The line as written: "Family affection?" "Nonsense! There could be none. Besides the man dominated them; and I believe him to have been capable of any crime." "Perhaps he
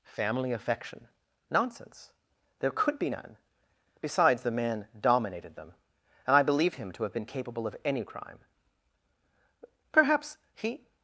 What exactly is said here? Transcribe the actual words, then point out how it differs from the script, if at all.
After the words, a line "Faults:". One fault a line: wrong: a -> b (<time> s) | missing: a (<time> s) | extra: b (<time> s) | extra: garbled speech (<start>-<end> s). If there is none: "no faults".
"Family affection?" "Nonsense! There could be none. Besides the man dominated them; and I believe him to have been capable of any crime." "Perhaps he
Faults:
no faults